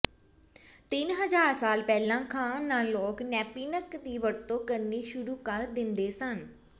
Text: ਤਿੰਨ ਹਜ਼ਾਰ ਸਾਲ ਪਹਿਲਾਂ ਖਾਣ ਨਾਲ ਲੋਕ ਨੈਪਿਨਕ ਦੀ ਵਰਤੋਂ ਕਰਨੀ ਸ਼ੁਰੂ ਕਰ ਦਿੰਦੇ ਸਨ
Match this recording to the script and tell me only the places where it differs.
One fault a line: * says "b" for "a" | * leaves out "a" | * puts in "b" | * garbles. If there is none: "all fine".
all fine